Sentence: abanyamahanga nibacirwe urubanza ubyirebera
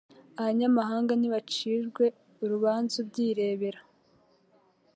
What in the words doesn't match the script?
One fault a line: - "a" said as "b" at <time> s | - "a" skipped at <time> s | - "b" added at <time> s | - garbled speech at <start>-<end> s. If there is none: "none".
none